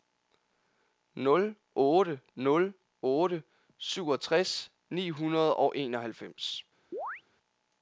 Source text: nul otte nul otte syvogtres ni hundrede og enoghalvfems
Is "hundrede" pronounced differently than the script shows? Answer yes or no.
no